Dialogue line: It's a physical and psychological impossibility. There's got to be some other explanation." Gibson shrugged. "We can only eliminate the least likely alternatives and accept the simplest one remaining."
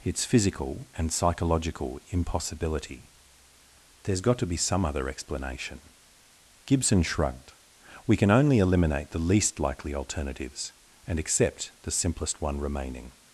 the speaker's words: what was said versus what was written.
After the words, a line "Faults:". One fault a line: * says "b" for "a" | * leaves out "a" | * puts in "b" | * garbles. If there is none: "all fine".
It's physical and psychological impossibility. There's got to be some other explanation." Gibson shrugged. "We can only eliminate the least likely alternatives and accept the simplest one remaining."
Faults:
* leaves out "a"